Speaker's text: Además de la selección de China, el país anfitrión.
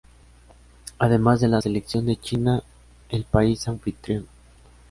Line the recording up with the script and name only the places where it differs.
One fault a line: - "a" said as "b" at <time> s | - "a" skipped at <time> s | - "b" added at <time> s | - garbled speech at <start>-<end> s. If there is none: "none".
none